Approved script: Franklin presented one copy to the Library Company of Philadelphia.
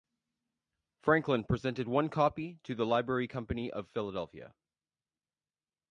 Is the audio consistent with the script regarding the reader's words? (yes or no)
yes